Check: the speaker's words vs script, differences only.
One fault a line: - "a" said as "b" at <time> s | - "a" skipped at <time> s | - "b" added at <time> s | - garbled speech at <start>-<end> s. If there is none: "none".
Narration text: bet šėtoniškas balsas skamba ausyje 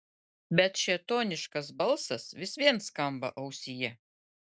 - "vis vien" added at 2.4 s